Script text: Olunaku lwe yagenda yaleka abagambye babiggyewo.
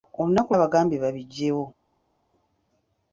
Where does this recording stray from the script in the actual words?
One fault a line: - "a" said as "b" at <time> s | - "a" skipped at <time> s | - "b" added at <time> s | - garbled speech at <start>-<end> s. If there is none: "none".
- "lwe yagenda yaleka" skipped at 0.5 s